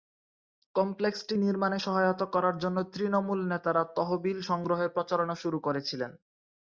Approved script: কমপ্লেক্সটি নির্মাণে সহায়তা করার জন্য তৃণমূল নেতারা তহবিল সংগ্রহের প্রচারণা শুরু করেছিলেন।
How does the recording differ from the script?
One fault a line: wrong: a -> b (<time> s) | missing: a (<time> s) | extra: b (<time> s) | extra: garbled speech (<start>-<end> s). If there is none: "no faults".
no faults